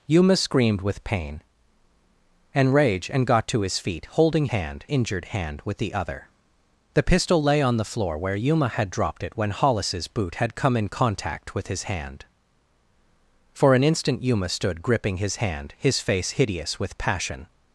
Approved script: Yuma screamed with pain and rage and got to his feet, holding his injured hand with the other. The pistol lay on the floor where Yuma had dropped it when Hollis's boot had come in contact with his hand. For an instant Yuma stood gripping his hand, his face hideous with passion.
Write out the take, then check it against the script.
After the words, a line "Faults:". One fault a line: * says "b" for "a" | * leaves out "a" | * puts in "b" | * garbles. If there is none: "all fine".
Yuma screamed with pain and rage and got to his feet, holding hand injured hand with the other. The pistol lay on the floor where Yuma had dropped it when Hollis's boot had come in contact with his hand. For an instant Yuma stood gripping his hand, his face hideous with passion.
Faults:
* says "hand" for "his"